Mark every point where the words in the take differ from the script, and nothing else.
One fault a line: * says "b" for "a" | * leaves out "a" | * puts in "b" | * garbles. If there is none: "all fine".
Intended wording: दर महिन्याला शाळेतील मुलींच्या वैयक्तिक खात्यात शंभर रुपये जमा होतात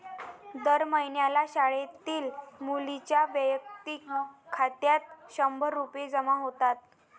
all fine